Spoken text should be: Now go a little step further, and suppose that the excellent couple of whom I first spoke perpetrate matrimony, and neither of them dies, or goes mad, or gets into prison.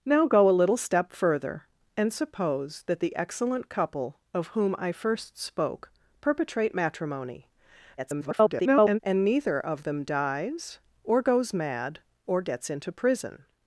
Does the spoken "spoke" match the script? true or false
true